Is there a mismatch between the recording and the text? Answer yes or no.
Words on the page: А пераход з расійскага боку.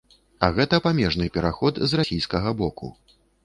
yes